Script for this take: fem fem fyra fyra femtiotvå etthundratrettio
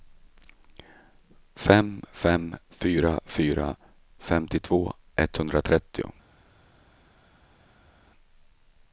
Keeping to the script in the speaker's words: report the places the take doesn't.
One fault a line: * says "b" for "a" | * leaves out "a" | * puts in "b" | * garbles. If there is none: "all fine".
all fine